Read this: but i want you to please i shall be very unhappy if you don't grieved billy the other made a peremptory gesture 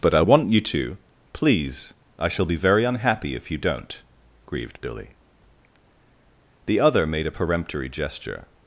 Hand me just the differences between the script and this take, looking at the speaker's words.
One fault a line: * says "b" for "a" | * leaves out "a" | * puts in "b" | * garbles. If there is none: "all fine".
all fine